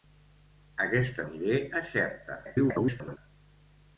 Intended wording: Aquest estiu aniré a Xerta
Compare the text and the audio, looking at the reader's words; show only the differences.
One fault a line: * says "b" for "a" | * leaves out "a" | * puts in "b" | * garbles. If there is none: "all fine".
* leaves out "estiu"
* garbles